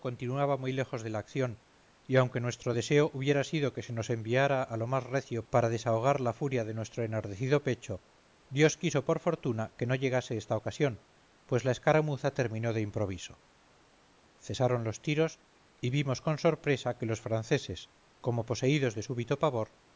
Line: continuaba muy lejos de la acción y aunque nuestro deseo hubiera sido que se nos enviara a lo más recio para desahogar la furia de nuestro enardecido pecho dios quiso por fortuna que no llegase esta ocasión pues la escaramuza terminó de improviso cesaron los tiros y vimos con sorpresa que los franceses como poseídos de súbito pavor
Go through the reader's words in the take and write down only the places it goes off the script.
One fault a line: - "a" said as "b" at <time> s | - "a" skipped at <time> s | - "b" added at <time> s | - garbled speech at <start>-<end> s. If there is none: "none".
none